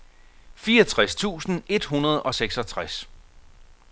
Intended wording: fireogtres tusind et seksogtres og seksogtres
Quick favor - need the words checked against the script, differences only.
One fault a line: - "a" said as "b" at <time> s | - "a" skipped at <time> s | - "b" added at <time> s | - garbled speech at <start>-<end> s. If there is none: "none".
- "seksogtres" said as "hundrede" at 1.8 s